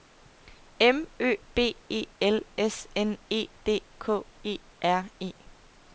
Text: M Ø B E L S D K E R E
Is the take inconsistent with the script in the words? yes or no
yes